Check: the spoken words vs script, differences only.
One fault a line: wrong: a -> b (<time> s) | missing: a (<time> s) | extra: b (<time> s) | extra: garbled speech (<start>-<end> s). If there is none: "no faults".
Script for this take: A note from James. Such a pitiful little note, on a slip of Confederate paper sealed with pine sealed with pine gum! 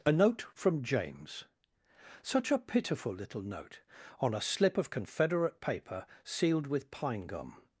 missing: sealed with pine (7.3 s)